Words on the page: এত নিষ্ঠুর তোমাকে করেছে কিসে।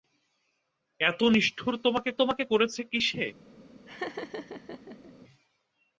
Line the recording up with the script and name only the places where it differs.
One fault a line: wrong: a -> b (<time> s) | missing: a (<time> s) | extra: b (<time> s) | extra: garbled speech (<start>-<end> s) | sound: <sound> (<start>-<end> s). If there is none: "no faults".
extra: তোমাকে (2.2 s)
sound: laugh (3.9-5.1 s)